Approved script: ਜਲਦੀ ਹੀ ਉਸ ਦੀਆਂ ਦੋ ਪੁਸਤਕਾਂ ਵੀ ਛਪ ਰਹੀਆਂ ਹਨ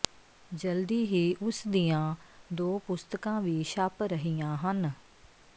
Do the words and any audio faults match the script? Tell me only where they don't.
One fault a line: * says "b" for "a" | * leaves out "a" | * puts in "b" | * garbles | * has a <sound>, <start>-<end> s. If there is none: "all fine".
all fine